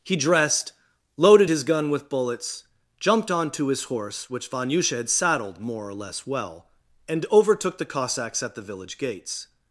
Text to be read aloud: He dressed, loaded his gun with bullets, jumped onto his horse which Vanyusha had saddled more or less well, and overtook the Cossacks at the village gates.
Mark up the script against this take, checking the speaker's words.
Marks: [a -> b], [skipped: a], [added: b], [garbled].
He dressed, loaded his gun with bullets, jumped onto his horse which Vanyusha had saddled more or less well, and overtook the Cossacks at the village gates.